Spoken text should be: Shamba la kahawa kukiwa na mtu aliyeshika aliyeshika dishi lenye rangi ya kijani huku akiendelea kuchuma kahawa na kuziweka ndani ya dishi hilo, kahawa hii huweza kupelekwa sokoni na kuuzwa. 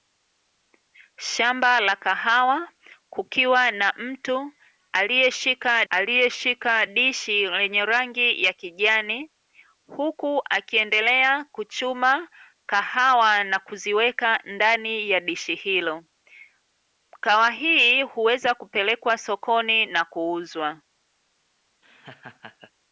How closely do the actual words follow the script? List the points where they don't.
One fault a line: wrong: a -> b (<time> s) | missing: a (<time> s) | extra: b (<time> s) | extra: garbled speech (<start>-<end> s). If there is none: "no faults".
no faults